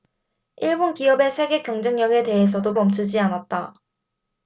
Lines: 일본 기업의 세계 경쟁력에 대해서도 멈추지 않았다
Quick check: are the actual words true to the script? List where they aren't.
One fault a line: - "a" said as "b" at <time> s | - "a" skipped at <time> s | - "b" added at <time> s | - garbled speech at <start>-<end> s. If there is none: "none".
none